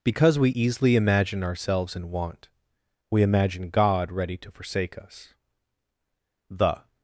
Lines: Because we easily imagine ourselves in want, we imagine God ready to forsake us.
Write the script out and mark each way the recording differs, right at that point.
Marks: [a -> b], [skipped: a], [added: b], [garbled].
Because we easily imagine ourselves in want, we imagine God ready to forsake us. [added: The]